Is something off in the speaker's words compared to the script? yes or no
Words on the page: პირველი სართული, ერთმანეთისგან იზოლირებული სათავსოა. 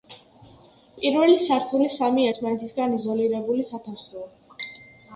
yes